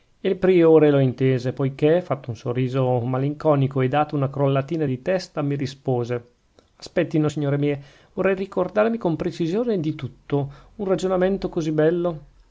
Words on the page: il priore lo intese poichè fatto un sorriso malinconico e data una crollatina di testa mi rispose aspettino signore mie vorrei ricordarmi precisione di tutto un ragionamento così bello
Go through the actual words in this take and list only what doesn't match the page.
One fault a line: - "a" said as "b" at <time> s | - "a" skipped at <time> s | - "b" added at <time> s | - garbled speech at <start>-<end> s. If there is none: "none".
- "con" added at 9.0 s